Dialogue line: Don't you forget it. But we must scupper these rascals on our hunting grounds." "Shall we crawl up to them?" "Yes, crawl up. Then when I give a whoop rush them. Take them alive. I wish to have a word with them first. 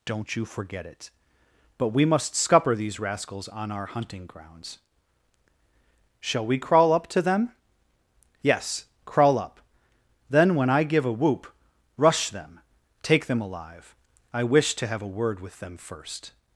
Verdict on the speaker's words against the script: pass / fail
pass